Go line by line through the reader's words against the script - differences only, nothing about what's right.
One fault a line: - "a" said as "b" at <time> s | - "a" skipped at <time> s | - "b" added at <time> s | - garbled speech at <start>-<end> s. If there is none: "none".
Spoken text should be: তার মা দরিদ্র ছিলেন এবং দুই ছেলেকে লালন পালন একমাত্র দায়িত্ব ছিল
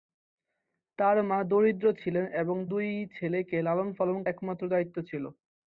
none